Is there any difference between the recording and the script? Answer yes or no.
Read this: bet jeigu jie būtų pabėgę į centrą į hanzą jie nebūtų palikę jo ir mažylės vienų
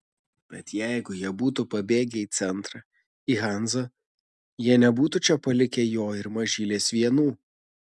yes